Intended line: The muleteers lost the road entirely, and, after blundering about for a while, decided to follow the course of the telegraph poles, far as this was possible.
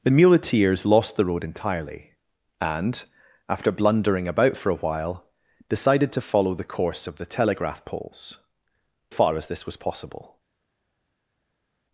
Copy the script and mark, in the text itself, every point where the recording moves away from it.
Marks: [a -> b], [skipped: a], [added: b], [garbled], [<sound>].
The muleteers lost the road entirely, and, after blundering about for a while, decided to follow the course of the telegraph poles, far as this was possible.